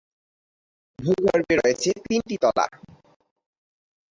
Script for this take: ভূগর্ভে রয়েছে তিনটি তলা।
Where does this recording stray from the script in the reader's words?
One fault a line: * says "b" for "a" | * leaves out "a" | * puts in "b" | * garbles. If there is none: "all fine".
all fine